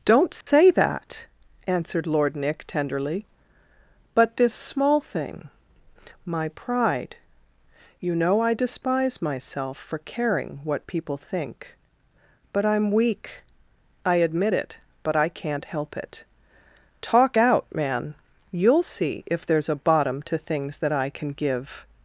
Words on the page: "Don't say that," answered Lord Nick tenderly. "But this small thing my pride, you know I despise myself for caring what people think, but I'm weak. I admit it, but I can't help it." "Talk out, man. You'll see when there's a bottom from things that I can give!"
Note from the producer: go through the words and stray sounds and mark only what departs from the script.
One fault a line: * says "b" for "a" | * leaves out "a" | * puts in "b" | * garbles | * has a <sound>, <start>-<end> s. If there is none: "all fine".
* has a dropout, 0.4-0.5 s
* says "if" for "when"
* says "to" for "from"